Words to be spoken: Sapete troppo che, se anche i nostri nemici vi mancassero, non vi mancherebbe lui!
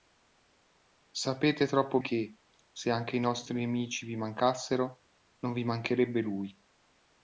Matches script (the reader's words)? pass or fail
pass